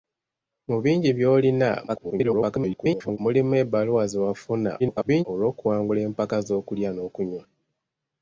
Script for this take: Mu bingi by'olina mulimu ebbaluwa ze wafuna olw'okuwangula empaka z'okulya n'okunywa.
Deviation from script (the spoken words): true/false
true